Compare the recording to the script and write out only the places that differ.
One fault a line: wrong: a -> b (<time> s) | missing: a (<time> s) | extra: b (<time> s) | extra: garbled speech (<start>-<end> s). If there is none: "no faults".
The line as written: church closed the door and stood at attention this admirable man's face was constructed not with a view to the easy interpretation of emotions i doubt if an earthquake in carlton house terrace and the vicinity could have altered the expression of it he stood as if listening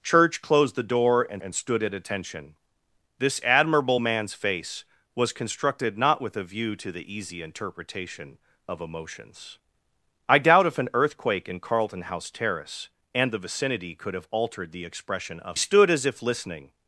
extra: and (1.4 s)
missing: it he (15.6 s)